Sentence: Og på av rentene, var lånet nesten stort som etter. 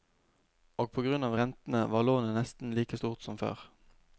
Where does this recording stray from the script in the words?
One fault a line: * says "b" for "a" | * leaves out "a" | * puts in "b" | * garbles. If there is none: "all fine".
* puts in "grunn"
* puts in "like"
* says "før" for "etter"